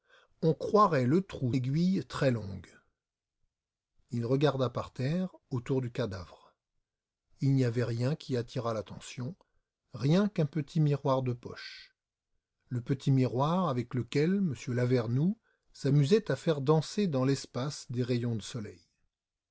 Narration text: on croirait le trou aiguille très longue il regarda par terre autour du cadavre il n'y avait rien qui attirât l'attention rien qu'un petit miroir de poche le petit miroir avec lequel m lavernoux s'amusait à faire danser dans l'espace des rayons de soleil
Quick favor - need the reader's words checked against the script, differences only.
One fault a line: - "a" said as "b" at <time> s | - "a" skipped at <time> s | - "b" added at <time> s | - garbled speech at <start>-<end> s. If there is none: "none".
none